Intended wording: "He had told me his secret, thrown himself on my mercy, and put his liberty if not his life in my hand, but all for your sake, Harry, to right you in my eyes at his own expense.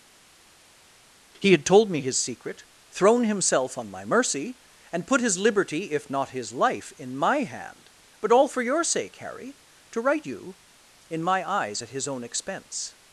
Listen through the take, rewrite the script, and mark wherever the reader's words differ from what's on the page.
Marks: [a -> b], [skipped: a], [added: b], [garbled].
"He had told me his secret, thrown himself on my mercy, and put his liberty if not his life in my hand, but all for your sake, Harry, to right you in my eyes at his own expense.